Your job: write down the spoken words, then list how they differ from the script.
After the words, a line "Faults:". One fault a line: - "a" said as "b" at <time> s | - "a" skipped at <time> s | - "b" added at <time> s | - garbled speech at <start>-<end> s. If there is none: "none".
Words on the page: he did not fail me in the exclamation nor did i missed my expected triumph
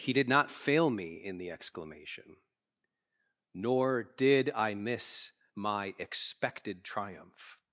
he did not fail me in the exclamation nor did i miss my expected triumph
Faults:
- "missed" said as "miss" at 4.7 s